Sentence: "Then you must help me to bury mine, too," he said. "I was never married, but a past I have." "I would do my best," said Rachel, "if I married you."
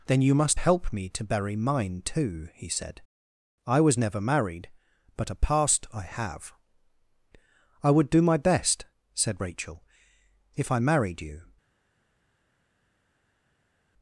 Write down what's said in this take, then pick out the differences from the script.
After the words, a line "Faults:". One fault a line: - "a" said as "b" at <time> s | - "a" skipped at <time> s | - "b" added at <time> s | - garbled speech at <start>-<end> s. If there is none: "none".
"Then you must help me to bury mine, too," he said. "I was never married, but a past I have." "I would do my best," said Rachel, "if I married you."
Faults:
none